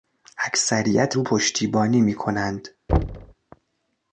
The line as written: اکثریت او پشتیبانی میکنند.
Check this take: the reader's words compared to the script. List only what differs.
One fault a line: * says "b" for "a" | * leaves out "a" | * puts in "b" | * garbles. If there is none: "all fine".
all fine